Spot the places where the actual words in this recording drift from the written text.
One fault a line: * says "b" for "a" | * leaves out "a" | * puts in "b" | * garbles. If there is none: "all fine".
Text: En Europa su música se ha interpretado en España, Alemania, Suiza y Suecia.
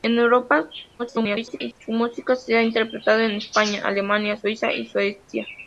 * garbles